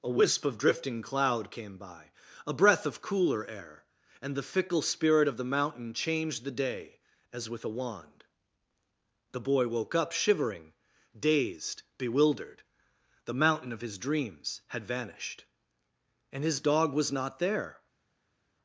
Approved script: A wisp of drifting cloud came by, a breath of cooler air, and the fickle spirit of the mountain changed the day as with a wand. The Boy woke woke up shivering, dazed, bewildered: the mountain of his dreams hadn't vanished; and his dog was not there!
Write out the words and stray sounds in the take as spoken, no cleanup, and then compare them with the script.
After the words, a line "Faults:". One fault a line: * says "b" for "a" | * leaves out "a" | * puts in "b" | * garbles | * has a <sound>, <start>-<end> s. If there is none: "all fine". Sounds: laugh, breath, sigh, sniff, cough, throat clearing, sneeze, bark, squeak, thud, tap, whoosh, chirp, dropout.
A wisp of drifting cloud came by, a breath of cooler air, and the fickle spirit of the mountain changed the day as with a wand. The Boy woke up shivering, dazed, bewildered: the mountain of his dreams had vanished; and his dog was not there!
Faults:
* leaves out "woke"
* says "had" for "hadn't"